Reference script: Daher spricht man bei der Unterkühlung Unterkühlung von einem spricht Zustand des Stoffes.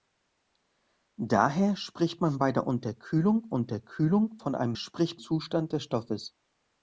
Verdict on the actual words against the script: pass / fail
pass